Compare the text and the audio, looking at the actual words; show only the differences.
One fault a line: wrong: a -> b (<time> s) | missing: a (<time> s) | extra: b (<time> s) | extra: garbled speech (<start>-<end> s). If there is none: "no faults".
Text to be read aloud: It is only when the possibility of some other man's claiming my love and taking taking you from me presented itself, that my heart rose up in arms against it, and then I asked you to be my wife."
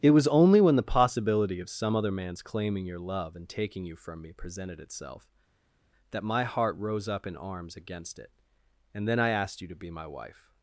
wrong: is -> was (0.1 s)
wrong: my -> your (2.9 s)
missing: taking (3.9 s)